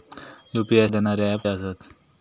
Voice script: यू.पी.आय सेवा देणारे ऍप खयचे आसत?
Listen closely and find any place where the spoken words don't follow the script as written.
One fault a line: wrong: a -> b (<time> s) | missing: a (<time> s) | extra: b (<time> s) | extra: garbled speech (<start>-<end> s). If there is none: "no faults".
missing: सेवा (0.9 s)
missing: खयचे (1.5 s)